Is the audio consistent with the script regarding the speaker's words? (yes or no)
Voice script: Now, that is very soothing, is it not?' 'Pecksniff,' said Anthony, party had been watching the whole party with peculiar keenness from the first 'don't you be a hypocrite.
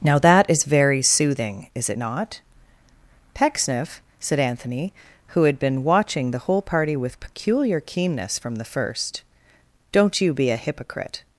no